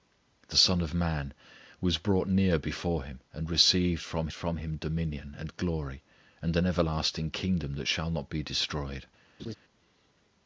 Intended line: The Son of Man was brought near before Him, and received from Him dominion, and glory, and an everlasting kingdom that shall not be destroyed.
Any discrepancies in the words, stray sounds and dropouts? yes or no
yes